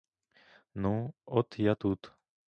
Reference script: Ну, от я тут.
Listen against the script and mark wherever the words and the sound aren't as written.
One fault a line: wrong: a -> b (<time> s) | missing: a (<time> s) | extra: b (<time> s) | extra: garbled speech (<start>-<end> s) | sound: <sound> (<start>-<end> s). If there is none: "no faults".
no faults